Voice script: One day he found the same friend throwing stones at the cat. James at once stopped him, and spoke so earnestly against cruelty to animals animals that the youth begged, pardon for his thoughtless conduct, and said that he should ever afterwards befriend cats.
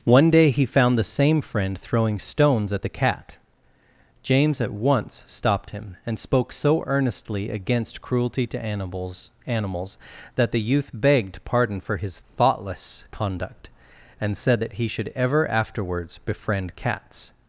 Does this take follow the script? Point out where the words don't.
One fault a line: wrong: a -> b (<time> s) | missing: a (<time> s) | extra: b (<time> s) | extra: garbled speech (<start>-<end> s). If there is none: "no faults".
no faults